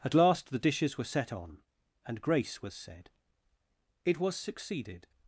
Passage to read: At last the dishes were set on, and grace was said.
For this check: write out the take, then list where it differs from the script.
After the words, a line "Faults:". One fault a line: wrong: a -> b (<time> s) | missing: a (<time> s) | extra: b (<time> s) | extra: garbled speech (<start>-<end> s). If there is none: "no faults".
At last the dishes were set on, and grace was said. It was succeeded
Faults:
extra: It was succeeded (4.0 s)